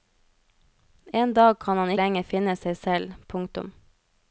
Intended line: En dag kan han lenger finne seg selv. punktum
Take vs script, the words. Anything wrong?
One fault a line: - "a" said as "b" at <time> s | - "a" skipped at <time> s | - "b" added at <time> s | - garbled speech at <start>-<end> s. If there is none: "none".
none